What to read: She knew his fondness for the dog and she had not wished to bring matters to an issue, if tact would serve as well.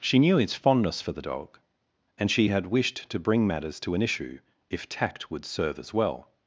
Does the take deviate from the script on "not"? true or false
true